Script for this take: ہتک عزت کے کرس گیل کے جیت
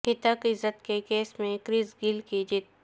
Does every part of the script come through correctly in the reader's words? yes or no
no